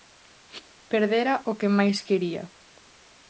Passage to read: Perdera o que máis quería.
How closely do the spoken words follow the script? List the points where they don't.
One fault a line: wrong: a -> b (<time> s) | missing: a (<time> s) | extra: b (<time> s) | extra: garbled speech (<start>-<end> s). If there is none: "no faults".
no faults